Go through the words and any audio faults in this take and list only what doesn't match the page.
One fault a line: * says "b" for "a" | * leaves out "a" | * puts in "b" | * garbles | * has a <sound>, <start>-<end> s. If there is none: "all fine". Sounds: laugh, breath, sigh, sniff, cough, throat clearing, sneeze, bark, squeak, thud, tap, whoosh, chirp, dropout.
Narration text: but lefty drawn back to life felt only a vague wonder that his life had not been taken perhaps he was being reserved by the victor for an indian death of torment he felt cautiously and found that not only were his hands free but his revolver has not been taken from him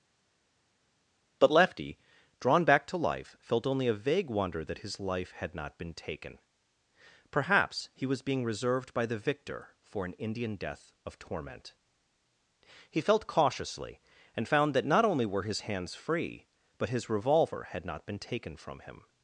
* says "had" for "has"